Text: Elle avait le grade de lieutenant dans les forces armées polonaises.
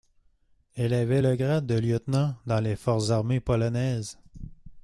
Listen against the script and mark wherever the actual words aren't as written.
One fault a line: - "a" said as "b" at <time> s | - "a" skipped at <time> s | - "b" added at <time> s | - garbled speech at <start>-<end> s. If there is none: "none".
none